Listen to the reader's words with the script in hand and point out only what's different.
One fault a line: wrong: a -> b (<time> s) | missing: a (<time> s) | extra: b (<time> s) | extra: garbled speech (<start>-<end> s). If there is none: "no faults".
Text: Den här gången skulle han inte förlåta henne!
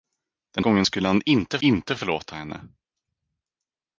missing: här (0.7 s)
extra: inte (1.6 s)